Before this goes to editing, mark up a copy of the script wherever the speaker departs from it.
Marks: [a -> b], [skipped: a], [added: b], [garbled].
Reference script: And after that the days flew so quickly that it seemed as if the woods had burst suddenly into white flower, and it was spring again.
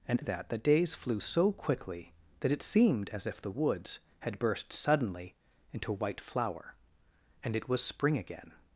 And [skipped: after] that the days flew so quickly that it seemed as if the woods had burst suddenly into white flower, and it was spring again.